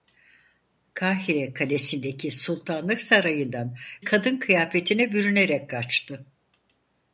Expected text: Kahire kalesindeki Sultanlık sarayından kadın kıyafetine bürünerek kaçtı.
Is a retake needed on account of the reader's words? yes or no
no